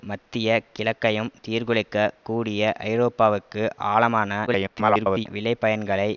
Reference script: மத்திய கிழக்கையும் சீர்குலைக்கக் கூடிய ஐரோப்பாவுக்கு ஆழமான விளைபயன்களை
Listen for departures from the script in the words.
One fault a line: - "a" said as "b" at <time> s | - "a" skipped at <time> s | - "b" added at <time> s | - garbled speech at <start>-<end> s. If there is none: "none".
- garbled speech at 4.5-5.3 s